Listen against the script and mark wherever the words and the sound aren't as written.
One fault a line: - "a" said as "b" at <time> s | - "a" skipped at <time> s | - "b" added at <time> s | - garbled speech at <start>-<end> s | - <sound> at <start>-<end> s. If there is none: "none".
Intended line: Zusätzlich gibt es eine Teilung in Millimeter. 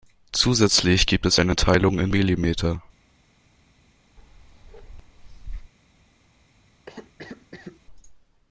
- bark at 4.2-5.7 s
- cough at 6.9-7.8 s